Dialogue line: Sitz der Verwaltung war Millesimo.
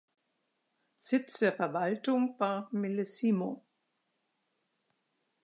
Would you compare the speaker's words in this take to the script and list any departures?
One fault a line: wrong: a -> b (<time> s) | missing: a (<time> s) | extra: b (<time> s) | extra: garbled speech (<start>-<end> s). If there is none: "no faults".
no faults